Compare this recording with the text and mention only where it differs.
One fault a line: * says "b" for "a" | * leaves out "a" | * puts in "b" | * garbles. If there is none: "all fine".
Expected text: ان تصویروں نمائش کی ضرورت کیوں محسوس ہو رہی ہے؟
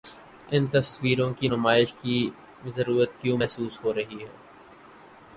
* puts in "کی"